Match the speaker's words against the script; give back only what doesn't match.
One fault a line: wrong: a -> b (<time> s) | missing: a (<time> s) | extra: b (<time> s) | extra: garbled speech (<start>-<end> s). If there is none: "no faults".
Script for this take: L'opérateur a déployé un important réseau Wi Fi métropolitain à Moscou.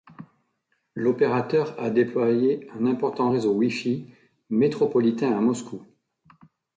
no faults